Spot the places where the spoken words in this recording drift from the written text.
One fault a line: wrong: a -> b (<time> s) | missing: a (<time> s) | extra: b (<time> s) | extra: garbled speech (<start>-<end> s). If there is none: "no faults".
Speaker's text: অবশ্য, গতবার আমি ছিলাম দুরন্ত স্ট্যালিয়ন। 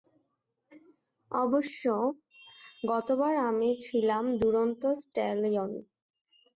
no faults